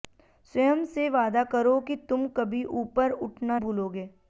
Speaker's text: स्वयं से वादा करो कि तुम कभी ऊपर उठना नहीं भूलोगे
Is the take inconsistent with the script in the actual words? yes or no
yes